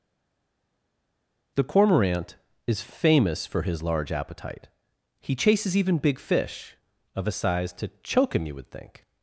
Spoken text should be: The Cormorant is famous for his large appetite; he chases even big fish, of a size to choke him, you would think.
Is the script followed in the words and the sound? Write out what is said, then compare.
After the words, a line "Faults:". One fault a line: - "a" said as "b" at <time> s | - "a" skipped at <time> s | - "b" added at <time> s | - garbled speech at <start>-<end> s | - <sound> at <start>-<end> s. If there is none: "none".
The Cormorant is famous for his large appetite; he chases even big fish, of a size to choke him, you would think.
Faults:
none